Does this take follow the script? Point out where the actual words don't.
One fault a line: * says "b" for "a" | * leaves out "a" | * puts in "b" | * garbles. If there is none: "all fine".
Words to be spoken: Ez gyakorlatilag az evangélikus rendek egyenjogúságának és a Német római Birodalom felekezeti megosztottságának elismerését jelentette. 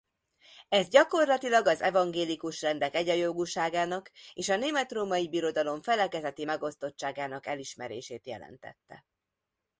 all fine